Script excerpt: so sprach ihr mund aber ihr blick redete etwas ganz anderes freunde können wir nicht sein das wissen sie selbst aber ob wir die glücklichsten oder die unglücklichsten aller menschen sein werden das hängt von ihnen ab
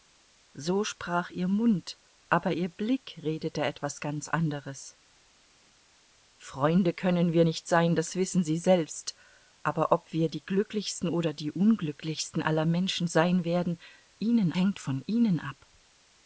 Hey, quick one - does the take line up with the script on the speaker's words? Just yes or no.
no